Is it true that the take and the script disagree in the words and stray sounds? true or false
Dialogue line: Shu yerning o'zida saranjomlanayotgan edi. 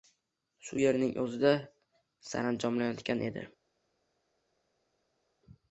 false